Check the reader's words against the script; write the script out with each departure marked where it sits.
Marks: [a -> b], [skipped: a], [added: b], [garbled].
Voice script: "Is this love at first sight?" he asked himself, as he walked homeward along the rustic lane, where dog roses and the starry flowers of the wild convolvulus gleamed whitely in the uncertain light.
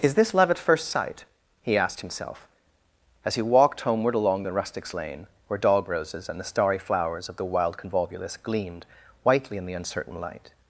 "Is this love at first sight?" he asked himself, as he walked homeward along the [rustic -> rustics] lane, where dog roses and the starry flowers of the wild convolvulus gleamed whitely in the uncertain light.